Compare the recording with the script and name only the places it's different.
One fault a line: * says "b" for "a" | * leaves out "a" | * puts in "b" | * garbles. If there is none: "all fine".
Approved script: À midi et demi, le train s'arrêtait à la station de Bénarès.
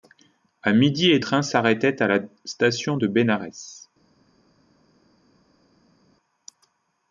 * leaves out "demi le"